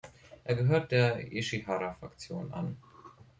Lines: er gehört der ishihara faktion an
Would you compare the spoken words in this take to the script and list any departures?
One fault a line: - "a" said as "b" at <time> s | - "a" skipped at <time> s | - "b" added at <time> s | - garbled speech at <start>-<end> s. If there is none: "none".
none